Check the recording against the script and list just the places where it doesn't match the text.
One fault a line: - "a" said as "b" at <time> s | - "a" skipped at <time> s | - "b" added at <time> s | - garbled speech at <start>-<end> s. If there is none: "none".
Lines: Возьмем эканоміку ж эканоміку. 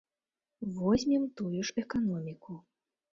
- "эканоміку" said as "тую" at 1.4 s